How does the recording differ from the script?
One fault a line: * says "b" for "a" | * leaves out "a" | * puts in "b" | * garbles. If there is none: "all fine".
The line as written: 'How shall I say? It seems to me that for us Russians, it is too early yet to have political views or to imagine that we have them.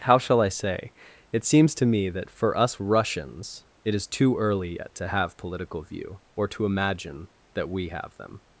* says "view" for "views"